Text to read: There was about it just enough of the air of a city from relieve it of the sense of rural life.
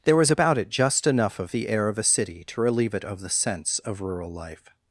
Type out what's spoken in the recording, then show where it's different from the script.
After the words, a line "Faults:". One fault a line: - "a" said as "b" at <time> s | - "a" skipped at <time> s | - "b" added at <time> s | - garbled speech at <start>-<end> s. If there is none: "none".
There was about it just enough of the air of a city to relieve it of the sense of rural life.
Faults:
- "from" said as "to" at 2.4 s